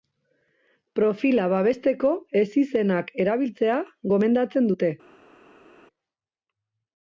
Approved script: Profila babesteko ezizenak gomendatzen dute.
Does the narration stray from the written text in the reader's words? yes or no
yes